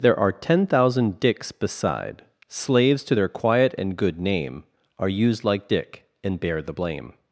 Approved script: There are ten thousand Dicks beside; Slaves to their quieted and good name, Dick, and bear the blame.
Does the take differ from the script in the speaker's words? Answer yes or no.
yes